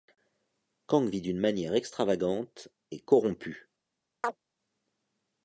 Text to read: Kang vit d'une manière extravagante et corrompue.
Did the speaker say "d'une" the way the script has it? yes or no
yes